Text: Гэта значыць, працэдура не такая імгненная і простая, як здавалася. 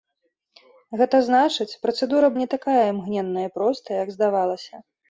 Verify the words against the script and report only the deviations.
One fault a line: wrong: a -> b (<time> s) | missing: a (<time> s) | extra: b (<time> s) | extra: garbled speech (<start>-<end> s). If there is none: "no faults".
no faults